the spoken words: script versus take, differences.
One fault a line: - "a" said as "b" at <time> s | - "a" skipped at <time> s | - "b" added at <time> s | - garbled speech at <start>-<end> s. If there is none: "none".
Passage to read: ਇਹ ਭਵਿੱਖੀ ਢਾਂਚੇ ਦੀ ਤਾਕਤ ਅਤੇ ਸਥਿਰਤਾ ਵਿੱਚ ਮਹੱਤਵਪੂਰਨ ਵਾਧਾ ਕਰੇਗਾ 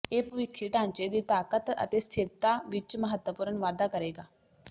none